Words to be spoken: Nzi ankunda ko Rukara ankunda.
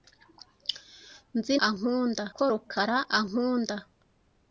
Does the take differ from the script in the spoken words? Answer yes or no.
no